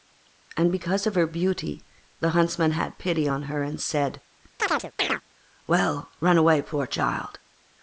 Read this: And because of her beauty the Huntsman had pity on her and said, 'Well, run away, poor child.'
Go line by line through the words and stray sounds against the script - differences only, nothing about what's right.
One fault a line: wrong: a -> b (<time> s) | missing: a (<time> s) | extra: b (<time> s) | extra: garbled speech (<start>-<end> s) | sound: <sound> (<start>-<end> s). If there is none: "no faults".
sound: chirp (4.6-5.2 s)